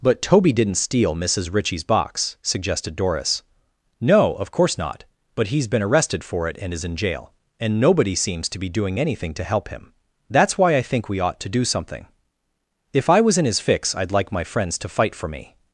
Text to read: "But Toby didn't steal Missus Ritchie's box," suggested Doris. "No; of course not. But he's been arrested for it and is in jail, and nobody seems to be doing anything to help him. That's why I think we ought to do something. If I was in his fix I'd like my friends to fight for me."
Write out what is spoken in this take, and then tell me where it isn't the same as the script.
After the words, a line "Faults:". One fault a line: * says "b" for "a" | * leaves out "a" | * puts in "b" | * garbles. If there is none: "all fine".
"But Toby didn't steal Missus Ritchie's box," suggested Doris. "No; of course not. But he's been arrested for it and is in jail, and nobody seems to be doing anything to help him. That's why I think we ought to do something. If I was in his fix I'd like my friends to fight for me."
Faults:
all fine